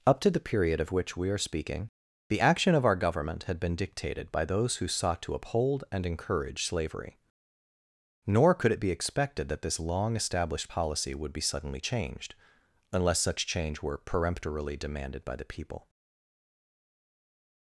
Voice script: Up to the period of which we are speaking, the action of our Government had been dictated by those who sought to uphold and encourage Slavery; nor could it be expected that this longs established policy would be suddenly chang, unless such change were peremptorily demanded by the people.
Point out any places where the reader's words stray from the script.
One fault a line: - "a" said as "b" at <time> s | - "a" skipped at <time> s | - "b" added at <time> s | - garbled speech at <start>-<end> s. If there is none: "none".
- "longs" said as "long" at 9.8 s
- "chang" said as "changed" at 11.8 s